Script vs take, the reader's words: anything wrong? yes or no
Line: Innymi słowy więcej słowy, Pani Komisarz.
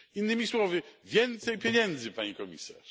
yes